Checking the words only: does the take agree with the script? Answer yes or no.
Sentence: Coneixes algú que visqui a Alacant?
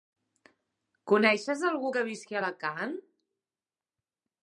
yes